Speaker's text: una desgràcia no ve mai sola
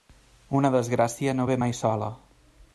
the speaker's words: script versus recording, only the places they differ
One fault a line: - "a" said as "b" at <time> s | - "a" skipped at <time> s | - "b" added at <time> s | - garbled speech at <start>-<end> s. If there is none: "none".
none